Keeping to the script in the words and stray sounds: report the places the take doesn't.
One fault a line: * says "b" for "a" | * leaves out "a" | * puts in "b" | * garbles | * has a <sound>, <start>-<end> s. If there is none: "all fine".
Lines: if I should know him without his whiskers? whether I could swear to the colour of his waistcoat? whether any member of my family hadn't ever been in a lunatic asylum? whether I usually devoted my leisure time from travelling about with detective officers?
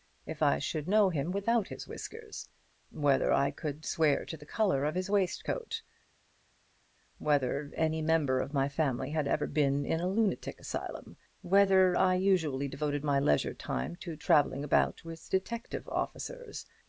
* says "had" for "hadn't"
* says "to" for "from"